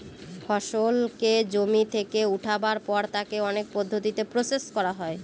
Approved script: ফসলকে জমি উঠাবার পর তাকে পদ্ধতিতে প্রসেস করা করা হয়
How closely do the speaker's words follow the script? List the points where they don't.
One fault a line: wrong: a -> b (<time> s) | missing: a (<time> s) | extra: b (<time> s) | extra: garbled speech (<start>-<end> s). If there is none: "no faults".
extra: থেকে (1.9 s)
extra: অনেক (3.5 s)
missing: করা (4.9 s)